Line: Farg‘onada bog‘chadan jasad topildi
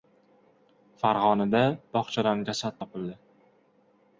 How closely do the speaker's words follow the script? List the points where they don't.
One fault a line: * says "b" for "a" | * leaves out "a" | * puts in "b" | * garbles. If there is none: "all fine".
all fine